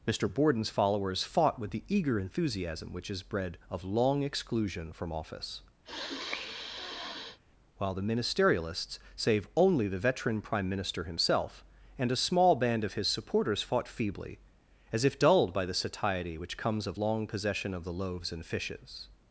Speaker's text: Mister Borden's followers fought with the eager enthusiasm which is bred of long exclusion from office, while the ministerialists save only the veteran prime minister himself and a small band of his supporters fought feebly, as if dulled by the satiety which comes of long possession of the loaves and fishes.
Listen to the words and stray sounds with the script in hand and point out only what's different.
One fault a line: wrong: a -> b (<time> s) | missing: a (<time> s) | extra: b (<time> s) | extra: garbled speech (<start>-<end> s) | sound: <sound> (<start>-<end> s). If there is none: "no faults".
sound: sniff (5.9-7.4 s)